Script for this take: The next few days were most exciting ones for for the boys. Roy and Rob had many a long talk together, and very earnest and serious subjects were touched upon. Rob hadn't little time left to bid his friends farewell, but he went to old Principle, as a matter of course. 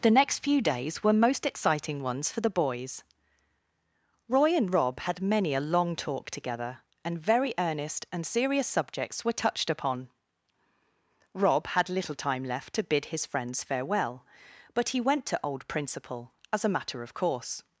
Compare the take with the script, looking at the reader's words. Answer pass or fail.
fail